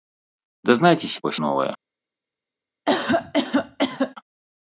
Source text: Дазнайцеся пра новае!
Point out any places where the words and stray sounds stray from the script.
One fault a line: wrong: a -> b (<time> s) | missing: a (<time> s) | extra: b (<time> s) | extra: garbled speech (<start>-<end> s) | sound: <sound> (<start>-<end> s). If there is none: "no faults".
sound: cough (2.9-4.2 s)